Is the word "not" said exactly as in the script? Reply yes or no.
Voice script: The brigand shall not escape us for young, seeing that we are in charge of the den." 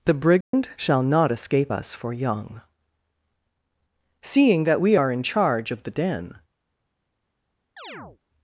yes